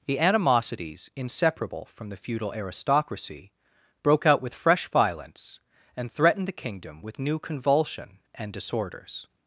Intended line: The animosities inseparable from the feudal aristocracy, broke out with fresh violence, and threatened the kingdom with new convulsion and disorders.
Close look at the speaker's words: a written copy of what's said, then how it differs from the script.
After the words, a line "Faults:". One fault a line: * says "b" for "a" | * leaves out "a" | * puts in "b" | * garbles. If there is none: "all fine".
The animosities inseparable from the feudal aristocracy, broke out with fresh violence, and threatened the kingdom with new convulsion and disorders.
Faults:
all fine